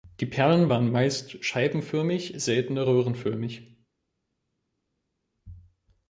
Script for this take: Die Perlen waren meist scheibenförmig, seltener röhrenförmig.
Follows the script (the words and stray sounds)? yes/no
yes